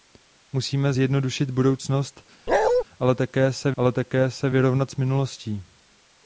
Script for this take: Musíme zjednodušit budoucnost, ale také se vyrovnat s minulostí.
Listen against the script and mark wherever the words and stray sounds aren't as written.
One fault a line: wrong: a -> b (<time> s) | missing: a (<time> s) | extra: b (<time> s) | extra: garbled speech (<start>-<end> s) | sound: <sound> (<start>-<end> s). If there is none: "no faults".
sound: bark (2.5-2.8 s)
extra: ale také se (3.8 s)